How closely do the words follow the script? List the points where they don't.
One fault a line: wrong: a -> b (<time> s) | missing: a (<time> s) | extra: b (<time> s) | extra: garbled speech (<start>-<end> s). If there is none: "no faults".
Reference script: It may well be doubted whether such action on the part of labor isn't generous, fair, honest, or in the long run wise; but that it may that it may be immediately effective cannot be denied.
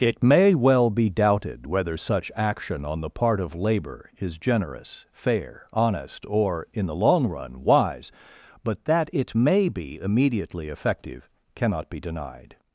wrong: isn't -> is (4.2 s)
missing: that it may (9.7 s)